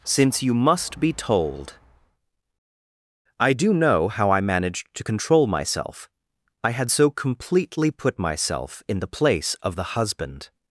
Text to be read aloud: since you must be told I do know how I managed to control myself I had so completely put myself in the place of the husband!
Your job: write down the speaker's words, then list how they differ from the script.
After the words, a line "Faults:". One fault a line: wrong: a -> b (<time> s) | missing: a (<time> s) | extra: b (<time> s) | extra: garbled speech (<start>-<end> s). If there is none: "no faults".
since you must be told I do know how I managed to control myself I had so completely put myself in the place of the husband!
Faults:
no faults